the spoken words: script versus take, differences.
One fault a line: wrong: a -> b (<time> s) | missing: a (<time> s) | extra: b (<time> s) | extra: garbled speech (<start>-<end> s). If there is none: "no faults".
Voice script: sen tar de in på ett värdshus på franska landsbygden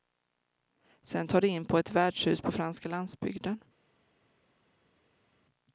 no faults